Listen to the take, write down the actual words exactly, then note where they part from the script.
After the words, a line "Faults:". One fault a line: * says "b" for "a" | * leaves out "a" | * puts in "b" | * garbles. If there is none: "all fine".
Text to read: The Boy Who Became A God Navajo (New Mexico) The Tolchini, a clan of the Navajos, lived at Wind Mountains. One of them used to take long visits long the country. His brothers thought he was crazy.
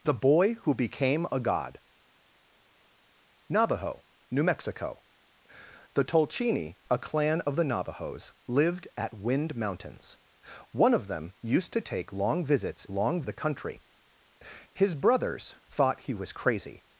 The Boy Who Became A God Navajo (New Mexico) The Tolchini, a clan of the Navajos, lived at Wind Mountains. One of them used to take long visits long the country. His brothers thought he was crazy.
Faults:
all fine